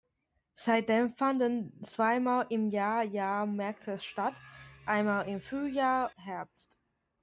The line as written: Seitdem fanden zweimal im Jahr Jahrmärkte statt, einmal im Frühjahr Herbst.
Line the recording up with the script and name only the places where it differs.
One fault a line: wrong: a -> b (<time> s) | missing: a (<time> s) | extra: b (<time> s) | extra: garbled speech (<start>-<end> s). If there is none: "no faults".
no faults